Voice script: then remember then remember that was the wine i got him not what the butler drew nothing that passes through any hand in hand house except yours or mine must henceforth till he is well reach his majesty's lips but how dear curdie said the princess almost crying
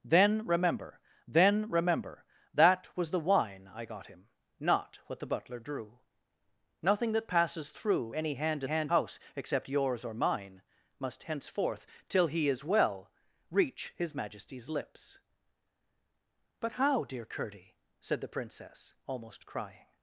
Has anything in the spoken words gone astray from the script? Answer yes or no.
no